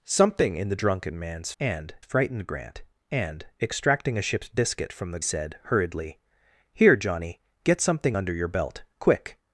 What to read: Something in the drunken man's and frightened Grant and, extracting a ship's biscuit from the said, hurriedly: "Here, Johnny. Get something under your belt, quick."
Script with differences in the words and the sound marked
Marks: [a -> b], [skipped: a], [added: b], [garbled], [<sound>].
Something in the drunken man's and frightened Grant and, extracting a ship's biscuit from the said, hurriedly: "Here, Johnny. Get something under your belt, quick."